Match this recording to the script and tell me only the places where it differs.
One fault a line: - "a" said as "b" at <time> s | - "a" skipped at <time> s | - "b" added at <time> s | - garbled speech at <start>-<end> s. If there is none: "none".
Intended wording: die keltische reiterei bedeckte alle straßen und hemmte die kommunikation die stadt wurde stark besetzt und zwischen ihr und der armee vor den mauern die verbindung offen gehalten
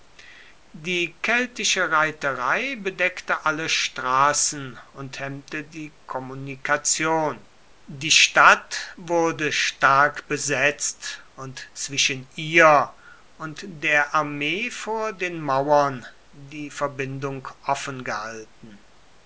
none